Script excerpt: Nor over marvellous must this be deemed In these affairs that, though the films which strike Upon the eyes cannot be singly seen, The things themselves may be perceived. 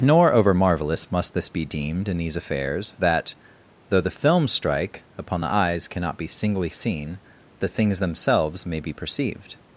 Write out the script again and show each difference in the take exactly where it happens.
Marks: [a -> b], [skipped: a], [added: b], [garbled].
Nor over marvellous must this be deemed In these affairs that, though the films [skipped: which] strike Upon the eyes cannot be singly seen, The things themselves may be perceived.